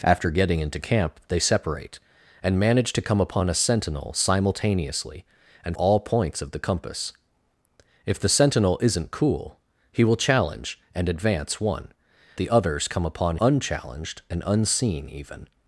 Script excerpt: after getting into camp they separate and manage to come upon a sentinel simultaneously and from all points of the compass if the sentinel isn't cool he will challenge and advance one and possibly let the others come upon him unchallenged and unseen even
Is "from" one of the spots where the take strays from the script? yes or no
yes